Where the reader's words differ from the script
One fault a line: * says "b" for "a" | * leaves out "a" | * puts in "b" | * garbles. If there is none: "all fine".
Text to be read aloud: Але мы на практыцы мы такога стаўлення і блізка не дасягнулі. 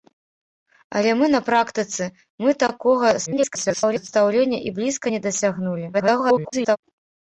* garbles
* garbles